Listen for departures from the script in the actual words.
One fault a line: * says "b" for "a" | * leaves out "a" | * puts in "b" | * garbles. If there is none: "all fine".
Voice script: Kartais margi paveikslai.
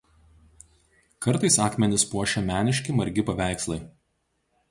* puts in "akmenis puošia meniški"